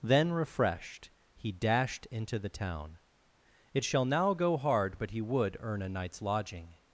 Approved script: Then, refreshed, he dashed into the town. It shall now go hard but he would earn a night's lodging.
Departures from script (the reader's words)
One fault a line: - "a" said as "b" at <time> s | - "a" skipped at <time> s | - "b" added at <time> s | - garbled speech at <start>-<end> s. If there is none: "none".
none